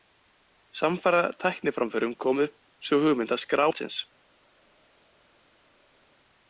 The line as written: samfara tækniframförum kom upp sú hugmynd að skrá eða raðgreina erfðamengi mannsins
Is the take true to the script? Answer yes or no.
no